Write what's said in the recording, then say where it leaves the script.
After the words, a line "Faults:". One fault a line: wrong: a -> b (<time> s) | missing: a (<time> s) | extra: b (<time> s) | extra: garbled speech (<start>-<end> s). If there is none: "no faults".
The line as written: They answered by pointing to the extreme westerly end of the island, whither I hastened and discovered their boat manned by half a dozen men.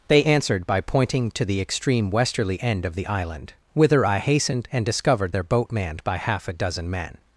They answered by pointing to the extreme westerly end of the island, whither I hastened and discovered their boat manned by half a dozen men.
Faults:
no faults